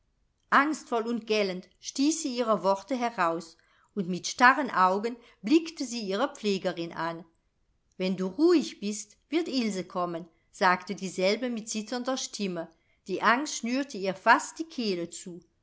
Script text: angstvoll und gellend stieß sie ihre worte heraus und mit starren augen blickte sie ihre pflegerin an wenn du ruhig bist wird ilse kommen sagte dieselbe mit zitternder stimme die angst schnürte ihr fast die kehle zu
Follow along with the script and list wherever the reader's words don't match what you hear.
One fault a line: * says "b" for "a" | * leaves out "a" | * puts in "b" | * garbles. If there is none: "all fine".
all fine